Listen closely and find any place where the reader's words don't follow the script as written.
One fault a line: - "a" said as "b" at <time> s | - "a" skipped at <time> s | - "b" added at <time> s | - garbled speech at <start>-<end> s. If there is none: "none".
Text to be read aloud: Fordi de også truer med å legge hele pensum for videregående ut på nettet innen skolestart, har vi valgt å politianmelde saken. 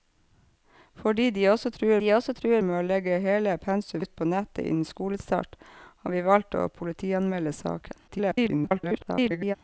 - "de også truer" added at 2.0 s
- "for videregående" skipped at 4.0 s
- garbled speech at 8.1-9.6 s